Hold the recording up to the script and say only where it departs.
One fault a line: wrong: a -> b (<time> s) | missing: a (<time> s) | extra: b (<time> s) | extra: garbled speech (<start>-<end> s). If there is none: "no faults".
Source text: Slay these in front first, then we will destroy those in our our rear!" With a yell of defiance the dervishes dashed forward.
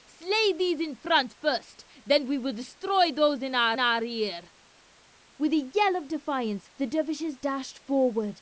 no faults